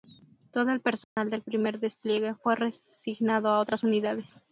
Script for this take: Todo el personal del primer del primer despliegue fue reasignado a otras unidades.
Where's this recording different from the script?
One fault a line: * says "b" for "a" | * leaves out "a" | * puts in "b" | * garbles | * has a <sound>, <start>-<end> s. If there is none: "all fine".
* has a dropout, 1.0-1.2 s
* leaves out "del primer"